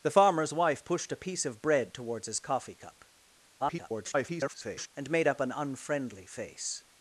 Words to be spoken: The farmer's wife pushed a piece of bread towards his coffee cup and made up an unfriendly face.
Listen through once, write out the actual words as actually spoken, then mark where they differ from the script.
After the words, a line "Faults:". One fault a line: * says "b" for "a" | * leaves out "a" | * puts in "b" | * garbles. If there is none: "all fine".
The farmer's wife pushed a piece of bread towards his coffee cup [garbled] and made up an unfriendly face.
Faults:
* garbles